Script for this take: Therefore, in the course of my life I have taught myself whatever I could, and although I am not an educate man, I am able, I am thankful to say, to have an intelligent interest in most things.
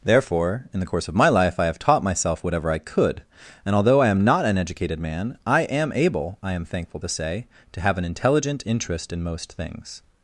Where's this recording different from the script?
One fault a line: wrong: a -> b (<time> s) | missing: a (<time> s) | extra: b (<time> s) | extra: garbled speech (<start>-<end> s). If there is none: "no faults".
wrong: educate -> educated (4.6 s)